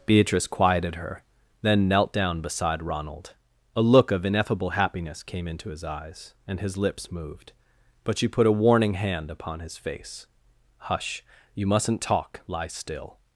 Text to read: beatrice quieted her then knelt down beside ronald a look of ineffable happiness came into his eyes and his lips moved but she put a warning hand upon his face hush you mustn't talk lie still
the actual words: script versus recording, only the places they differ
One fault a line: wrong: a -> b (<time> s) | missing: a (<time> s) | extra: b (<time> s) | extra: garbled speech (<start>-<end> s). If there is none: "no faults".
no faults